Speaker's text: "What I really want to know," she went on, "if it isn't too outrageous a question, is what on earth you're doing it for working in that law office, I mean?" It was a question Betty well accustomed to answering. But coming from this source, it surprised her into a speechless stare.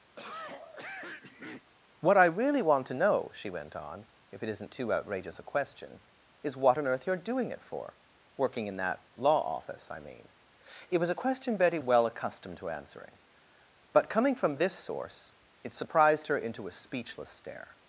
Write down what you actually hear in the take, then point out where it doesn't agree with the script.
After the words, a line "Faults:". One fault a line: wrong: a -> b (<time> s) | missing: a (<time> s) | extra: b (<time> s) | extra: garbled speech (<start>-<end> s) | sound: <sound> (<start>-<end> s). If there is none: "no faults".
"What I really want to know," she went on, "if it isn't too outrageous a question, is what on earth you're doing it for working in that law office, I mean?" It was a question Betty well accustomed to answering. But coming from this source, it surprised her into a speechless stare.
Faults:
sound: cough (0.2-1.7 s)